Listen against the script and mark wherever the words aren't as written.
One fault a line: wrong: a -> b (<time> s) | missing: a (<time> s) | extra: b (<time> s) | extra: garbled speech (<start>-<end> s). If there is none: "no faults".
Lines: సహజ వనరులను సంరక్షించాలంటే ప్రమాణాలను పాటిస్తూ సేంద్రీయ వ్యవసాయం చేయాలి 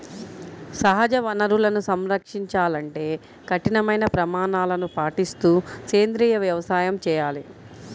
extra: కఠినమైన (3.5 s)